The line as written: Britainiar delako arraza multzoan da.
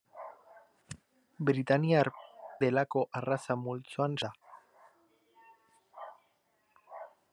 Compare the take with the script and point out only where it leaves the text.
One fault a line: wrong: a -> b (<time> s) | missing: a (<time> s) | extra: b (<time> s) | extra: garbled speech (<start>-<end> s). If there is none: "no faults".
no faults